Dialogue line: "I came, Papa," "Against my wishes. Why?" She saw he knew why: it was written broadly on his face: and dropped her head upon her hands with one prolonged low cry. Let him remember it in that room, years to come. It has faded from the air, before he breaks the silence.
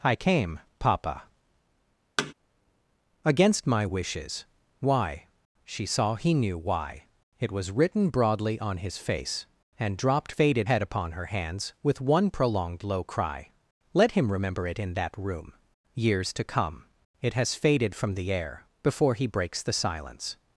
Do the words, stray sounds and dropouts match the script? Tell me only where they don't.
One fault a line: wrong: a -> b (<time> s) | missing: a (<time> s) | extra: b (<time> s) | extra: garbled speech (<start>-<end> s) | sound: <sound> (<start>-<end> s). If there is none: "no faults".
sound: thud (2.2-2.3 s)
wrong: her -> faded (10.3 s)